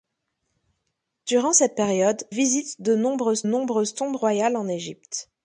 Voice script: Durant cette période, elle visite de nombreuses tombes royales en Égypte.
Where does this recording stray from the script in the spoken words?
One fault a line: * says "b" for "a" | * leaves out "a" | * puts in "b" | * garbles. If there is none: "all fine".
* leaves out "elle"
* puts in "nombreuses"